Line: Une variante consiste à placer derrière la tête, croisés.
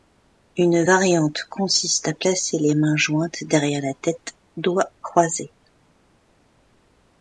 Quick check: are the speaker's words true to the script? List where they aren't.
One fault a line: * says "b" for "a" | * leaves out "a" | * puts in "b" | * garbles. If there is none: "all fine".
* puts in "les mains jointes"
* puts in "doigts"